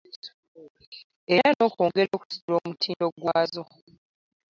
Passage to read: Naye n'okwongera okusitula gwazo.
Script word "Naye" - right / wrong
wrong